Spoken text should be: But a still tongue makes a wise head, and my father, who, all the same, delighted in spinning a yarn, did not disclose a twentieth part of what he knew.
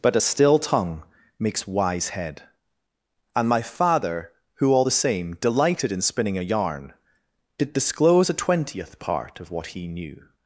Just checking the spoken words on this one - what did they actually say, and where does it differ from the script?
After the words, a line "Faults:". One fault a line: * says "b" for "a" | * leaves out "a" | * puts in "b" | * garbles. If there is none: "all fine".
But a still tongue makes wise head, and my father, who, all the same, delighted in spinning a yarn, did disclose a twentieth part of what he knew.
Faults:
* leaves out "a"
* leaves out "not"